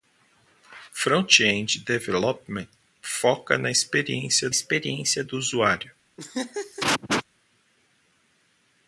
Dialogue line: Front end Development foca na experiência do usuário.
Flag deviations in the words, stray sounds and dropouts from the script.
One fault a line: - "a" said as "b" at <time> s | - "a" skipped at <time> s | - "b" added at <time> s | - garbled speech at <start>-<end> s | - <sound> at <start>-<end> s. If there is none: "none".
- "experiência" added at 4.5 s
- laugh at 6.2-7.2 s